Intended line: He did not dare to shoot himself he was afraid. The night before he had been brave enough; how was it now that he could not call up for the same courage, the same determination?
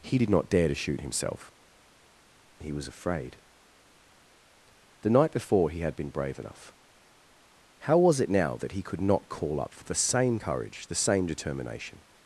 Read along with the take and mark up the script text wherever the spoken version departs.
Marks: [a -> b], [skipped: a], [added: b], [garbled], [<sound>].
He did not dare to shoot himself he was afraid. The night before he had been brave enough; how was it now that he could not call up for the same courage, the same determination?